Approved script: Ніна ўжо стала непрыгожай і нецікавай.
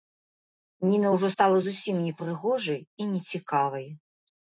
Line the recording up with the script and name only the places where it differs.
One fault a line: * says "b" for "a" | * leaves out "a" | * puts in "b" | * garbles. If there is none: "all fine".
* puts in "зусім"